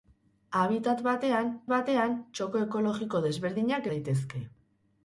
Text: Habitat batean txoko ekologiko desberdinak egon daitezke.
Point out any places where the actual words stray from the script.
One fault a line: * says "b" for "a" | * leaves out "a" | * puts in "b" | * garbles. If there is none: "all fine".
* puts in "batean"
* leaves out "egon"